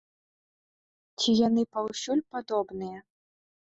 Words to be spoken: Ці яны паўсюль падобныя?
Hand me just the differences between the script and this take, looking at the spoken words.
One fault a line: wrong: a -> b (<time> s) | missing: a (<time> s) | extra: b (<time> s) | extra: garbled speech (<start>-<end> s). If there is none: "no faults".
no faults